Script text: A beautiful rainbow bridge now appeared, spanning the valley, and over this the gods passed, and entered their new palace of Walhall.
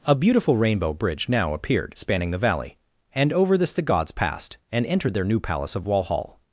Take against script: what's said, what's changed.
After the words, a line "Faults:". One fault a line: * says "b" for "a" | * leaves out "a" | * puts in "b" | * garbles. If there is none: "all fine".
A beautiful rainbow bridge now appeared, spanning the valley, and over this the gods passed, and entered their new palace of Walhall.
Faults:
all fine